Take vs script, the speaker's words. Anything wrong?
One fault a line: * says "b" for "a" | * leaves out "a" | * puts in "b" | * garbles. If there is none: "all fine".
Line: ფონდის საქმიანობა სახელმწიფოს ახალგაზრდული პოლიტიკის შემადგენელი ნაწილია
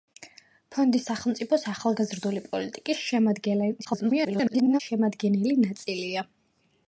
* leaves out "საქმიანობა"
* garbles